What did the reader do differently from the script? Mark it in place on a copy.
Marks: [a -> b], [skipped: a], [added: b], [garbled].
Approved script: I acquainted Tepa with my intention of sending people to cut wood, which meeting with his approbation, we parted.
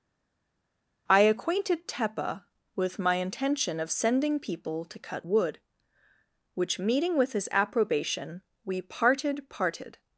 I acquainted Tepa with my intention of sending people to cut wood, which meeting with his approbation, we parted. [added: parted]